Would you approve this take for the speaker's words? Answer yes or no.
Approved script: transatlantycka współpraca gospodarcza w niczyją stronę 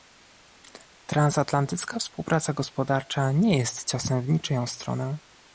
no